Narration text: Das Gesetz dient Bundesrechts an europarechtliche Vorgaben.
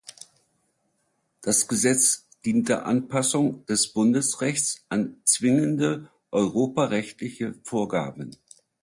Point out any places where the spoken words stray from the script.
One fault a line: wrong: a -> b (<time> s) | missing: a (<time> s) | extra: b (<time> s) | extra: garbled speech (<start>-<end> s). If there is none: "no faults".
extra: der Anpassung des (2.7 s)
extra: zwingende (5.2 s)